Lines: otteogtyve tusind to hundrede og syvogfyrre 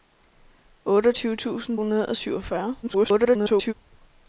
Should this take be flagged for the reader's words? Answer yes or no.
yes